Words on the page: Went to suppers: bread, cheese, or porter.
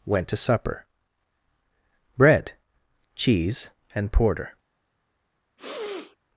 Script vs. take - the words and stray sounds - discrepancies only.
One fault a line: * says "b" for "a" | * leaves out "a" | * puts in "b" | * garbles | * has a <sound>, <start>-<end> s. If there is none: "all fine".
* says "supper" for "suppers"
* says "and" for "or"
* has a sneeze, 5.6-6.2 s